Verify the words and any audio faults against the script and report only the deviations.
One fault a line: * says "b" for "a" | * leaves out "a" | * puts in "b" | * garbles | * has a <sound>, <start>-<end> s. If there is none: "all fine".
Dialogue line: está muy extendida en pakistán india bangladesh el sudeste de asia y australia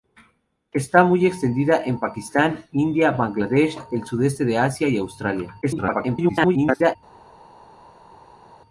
* garbles